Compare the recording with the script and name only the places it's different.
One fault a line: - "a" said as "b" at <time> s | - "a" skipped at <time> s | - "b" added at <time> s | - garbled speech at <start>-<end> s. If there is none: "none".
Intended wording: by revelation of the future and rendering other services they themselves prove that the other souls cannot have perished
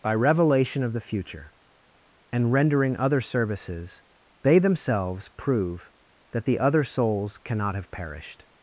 none